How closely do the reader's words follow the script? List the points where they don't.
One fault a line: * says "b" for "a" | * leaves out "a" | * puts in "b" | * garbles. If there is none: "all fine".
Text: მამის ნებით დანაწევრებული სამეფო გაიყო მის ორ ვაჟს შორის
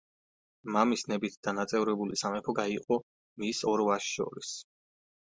all fine